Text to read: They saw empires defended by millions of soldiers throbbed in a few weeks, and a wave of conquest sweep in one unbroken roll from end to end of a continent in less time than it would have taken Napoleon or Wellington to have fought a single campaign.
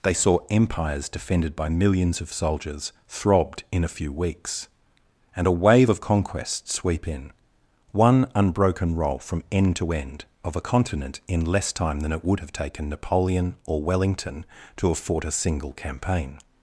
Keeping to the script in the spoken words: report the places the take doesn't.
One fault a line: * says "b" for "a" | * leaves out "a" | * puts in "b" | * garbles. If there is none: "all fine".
all fine